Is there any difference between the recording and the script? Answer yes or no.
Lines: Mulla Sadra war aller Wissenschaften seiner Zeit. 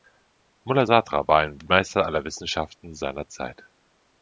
yes